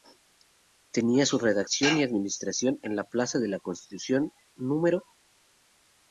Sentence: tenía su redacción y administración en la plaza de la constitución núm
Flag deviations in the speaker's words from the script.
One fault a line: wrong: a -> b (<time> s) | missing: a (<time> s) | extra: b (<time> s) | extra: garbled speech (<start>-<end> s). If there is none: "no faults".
no faults